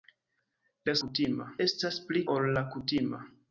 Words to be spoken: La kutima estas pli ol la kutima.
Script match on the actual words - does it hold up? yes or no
yes